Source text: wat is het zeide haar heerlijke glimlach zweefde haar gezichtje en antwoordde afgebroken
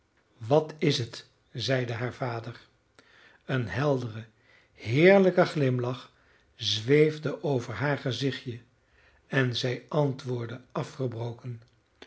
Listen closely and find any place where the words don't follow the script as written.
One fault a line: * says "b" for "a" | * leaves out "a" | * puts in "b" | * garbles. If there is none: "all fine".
* puts in "vader een heldere"
* puts in "over"
* puts in "zij"